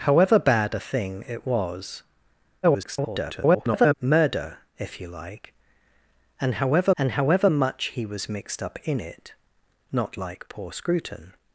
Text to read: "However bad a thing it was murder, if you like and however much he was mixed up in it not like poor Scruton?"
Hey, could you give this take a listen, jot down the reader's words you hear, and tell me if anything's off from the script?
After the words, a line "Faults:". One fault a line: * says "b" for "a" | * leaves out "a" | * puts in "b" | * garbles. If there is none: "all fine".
"However bad a thing it was [garbled] murder, if you like and however and however much he was mixed up in it not like poor Scruton?"
Faults:
* garbles
* puts in "and however"